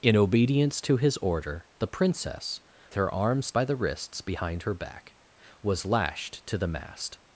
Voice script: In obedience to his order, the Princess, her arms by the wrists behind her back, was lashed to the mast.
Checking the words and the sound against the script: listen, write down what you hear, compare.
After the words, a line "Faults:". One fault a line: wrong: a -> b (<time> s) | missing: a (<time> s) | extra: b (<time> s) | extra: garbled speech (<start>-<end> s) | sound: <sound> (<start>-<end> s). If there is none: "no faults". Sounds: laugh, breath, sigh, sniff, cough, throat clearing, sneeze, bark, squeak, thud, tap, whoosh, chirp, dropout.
In obedience to his order, the Princess, her arms by the wrists behind her back, was lashed to the mast.
Faults:
no faults